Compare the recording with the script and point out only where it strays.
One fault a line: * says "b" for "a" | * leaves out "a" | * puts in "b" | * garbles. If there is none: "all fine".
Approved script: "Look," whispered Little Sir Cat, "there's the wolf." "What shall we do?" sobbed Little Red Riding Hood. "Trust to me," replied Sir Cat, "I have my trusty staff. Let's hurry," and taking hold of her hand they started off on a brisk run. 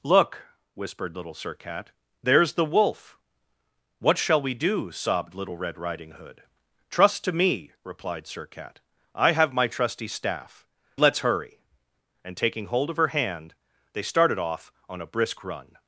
all fine